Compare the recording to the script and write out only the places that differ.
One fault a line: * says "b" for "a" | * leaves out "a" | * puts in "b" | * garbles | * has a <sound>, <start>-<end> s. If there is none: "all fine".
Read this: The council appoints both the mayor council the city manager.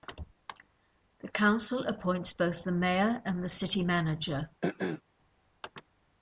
* says "and" for "council"
* has a throat clearing, 4.6-5.0 s